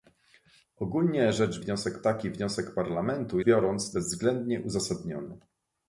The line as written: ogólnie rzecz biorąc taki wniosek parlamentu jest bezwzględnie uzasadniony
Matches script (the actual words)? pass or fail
fail